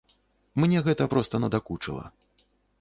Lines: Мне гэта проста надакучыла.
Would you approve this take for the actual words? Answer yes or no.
yes